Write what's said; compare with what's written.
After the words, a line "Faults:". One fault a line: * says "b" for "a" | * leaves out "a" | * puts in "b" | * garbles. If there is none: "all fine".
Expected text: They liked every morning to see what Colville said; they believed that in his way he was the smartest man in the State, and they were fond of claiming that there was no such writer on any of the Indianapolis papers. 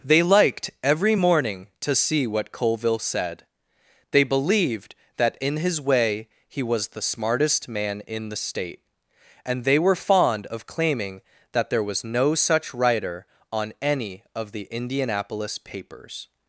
They liked every morning to see what Colville said; they believed that in his way he was the smartest man in the State, and they were fond of claiming that there was no such writer on any of the Indianapolis papers.
Faults:
all fine